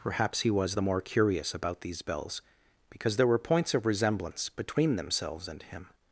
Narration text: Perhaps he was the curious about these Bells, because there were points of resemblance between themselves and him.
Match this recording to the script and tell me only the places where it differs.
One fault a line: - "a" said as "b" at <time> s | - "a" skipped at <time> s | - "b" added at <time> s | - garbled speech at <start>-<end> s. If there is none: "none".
- "more" added at 0.8 s